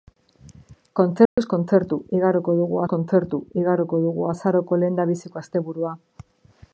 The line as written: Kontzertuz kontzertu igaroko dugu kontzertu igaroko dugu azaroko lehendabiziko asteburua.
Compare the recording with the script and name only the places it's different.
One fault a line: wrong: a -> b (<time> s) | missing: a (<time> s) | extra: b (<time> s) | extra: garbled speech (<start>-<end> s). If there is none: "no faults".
no faults